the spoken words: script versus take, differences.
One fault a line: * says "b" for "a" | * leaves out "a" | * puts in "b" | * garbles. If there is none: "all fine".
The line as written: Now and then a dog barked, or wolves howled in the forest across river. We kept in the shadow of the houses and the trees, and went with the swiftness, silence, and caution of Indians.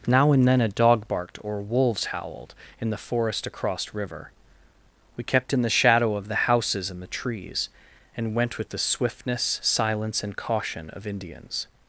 all fine